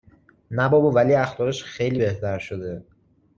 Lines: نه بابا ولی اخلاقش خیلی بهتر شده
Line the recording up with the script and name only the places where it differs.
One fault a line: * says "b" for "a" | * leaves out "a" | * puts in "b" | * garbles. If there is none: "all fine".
all fine